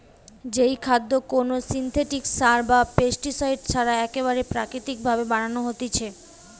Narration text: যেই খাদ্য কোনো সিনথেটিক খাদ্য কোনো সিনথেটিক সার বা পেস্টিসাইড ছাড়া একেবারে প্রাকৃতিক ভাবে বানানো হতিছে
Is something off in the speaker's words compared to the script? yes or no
yes